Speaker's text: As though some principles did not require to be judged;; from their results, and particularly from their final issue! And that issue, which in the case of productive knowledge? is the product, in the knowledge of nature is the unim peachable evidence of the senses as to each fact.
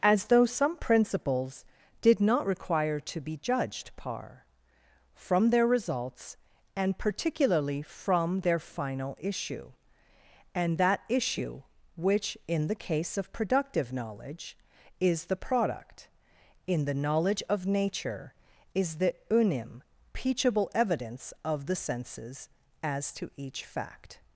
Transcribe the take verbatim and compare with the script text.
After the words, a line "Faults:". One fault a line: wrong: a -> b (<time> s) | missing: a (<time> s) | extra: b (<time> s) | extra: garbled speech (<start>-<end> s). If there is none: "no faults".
As though some principles did not require to be judged;; par from their results, and particularly from their final issue! And that issue, which in the case of productive knowledge? is the product, in the knowledge of nature is the unim peachable evidence of the senses as to each fact.
Faults:
extra: par (4.0 s)